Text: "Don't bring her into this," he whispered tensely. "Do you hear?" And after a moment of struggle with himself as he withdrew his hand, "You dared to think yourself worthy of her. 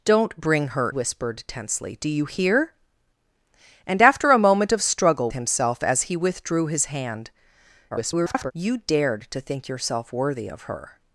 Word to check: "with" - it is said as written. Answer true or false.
false